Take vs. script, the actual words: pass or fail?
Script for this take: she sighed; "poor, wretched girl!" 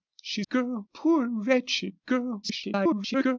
fail